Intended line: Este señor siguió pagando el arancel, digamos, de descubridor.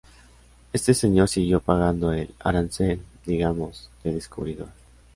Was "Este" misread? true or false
false